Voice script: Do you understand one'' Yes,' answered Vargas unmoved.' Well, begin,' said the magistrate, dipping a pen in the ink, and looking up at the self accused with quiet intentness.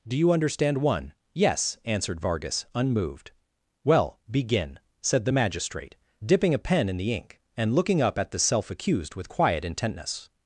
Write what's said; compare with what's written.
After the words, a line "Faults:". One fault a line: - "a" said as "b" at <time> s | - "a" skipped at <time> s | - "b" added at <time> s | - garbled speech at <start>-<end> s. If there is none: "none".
Do you understand one'' Yes,' answered Vargas unmoved.' Well, begin,' said the magistrate, dipping a pen in the ink, and looking up at the self accused with quiet intentness.
Faults:
none